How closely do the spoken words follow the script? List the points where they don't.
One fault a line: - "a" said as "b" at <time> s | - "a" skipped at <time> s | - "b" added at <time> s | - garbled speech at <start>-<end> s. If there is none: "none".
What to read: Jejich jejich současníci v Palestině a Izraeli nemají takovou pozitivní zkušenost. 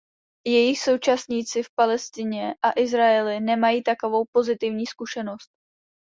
- "jejich" skipped at 0.8 s